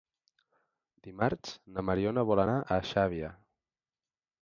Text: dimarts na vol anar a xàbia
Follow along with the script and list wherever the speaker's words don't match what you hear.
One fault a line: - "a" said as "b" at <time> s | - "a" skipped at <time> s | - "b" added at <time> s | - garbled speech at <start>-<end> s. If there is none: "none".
- "mariona" added at 1.9 s